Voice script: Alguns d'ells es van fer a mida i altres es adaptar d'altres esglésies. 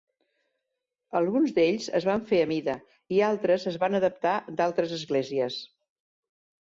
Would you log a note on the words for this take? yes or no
yes